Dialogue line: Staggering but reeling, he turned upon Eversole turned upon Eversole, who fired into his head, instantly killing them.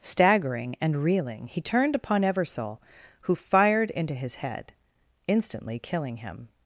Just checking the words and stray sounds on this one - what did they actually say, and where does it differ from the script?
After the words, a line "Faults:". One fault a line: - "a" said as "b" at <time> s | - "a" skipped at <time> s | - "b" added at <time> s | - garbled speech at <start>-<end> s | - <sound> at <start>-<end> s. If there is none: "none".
Staggering and reeling, he turned upon Eversole, who fired into his head, instantly killing him.
Faults:
- "but" said as "and" at 0.8 s
- "turned upon Eversole" skipped at 2.8 s
- "them" said as "him" at 6.2 s